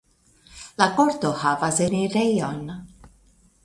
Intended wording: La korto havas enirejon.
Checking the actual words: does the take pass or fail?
pass